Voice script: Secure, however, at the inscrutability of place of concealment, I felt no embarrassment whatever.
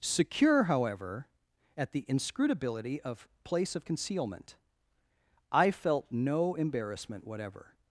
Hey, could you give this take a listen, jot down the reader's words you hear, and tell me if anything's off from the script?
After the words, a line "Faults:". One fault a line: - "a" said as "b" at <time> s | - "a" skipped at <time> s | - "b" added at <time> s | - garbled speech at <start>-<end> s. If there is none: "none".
Secure, however, at the inscrutability of place of concealment, I felt no embarrassment whatever.
Faults:
none